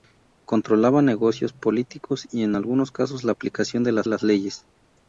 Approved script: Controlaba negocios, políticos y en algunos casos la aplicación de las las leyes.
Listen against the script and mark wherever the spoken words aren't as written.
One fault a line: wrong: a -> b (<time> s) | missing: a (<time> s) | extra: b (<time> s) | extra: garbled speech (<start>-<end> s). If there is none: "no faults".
no faults